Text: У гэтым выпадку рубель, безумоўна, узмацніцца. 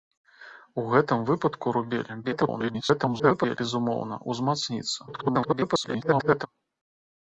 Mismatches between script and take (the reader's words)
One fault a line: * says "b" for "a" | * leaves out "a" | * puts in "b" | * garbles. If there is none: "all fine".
* garbles
* garbles